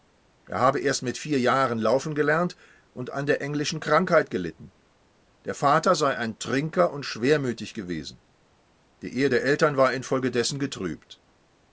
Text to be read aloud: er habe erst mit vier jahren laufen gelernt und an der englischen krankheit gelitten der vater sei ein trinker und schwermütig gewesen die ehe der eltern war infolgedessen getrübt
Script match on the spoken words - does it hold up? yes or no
yes